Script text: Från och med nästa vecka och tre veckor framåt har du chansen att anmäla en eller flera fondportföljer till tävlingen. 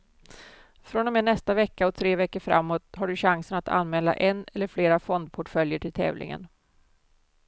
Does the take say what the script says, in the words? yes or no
yes